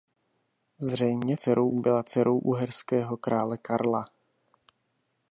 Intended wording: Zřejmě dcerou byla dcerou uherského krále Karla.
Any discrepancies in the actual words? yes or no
no